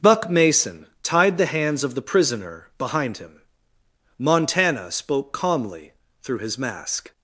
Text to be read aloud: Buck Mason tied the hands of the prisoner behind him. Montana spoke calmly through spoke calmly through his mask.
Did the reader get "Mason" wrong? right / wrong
right